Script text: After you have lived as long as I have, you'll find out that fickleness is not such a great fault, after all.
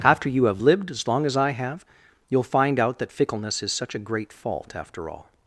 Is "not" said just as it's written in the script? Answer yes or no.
no